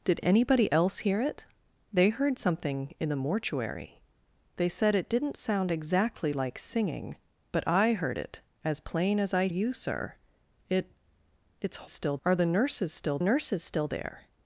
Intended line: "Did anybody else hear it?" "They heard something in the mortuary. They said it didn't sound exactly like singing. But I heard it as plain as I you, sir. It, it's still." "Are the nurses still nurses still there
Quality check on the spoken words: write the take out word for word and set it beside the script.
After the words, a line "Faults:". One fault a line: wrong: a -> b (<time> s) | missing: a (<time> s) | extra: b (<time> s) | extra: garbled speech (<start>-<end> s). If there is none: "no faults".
"Did anybody else hear it?" "They heard something in the mortuary. They said it didn't sound exactly like singing. But I heard it as plain as I you, sir. It, it's still." "Are the nurses still nurses still there
Faults:
no faults